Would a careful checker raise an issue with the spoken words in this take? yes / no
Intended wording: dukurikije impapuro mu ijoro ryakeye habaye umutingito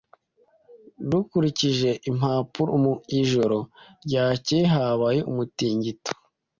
no